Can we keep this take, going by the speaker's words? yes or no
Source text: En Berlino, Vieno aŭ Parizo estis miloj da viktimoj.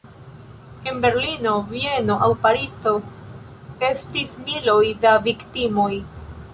yes